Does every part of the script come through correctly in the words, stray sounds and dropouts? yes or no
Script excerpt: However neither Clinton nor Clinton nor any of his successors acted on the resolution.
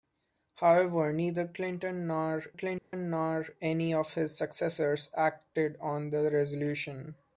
no